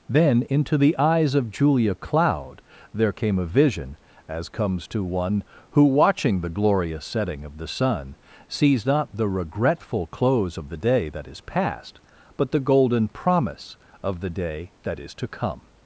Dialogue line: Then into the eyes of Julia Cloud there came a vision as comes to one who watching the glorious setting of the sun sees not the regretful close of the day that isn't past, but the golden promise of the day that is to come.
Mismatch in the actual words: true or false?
true